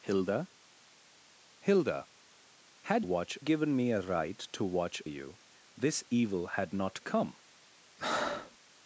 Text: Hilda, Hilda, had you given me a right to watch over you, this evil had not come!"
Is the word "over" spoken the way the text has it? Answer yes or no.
no